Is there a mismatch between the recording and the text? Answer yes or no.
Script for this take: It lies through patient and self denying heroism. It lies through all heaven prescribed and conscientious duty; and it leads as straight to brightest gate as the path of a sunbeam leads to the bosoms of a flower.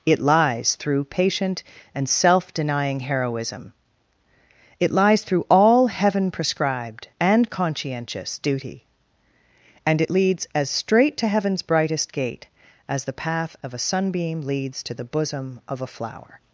yes